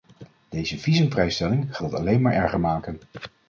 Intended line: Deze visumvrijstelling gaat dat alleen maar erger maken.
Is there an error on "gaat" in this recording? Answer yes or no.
yes